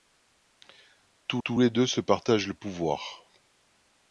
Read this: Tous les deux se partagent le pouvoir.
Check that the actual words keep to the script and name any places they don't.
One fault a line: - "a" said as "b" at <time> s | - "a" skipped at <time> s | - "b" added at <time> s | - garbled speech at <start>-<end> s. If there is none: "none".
- "tous" added at 1.4 s